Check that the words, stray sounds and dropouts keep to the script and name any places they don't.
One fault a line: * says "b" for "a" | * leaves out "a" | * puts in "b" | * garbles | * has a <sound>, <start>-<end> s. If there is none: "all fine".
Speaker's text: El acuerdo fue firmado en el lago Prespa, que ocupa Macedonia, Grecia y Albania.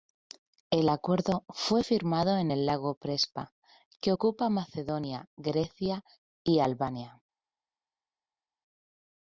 all fine